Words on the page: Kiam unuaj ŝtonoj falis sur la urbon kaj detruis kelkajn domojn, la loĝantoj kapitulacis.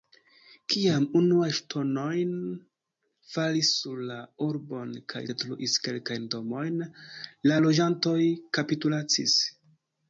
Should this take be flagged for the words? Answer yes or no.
no